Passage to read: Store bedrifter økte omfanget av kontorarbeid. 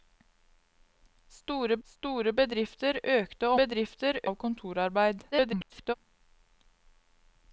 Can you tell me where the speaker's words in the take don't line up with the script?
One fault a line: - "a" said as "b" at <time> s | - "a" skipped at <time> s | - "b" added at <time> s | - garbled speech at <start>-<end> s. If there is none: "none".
- "store" added at 1.9 s
- "omfanget" said as "bedrifter" at 3.6 s
- garbled speech at 5.3-5.9 s